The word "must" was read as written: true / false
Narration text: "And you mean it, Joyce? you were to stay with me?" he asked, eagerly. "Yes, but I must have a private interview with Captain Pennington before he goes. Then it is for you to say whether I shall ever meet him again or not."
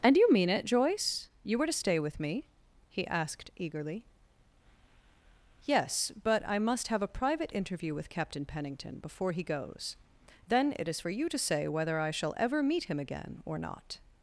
true